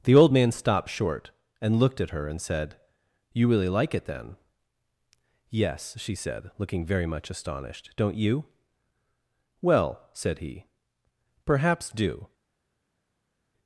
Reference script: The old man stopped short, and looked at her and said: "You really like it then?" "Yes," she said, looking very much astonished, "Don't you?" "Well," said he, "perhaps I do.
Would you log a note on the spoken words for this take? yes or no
yes